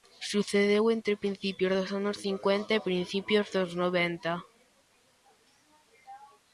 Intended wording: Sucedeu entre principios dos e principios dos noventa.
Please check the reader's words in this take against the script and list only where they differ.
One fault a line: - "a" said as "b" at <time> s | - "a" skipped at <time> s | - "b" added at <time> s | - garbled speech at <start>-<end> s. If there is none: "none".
- "anos cincuenta" added at 2.0 s